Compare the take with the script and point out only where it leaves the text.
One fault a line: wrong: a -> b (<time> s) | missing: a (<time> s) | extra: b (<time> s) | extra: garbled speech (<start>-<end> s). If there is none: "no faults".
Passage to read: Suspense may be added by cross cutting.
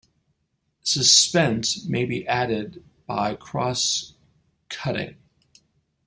no faults